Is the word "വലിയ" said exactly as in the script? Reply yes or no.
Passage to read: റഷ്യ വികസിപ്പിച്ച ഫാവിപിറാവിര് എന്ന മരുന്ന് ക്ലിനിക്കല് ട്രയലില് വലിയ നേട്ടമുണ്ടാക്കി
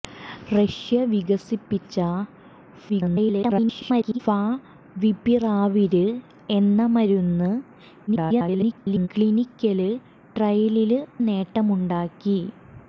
no